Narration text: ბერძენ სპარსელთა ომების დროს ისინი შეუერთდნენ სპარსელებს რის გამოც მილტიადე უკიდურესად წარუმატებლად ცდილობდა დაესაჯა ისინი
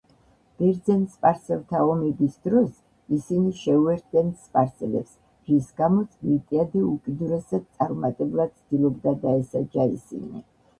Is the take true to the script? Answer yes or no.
yes